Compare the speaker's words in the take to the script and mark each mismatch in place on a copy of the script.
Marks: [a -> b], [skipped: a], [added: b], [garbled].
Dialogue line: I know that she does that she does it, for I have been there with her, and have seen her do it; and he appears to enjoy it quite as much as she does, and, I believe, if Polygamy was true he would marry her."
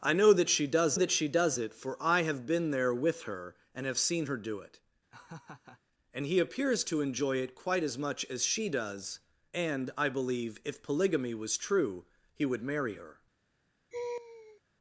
I know that she does that she does it, for I have been there with her, and have seen her do it; and he appears to enjoy it quite as much as she does, and, I believe, if Polygamy was true he would marry her."